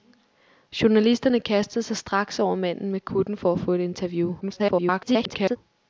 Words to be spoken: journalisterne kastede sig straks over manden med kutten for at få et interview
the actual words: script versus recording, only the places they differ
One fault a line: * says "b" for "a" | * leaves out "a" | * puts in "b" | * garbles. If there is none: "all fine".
* garbles